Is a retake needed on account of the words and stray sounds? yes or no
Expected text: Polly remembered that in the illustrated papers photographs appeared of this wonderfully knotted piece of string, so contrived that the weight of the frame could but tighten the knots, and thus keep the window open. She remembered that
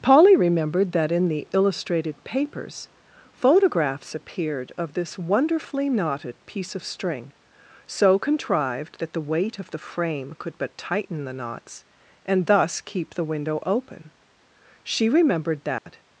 yes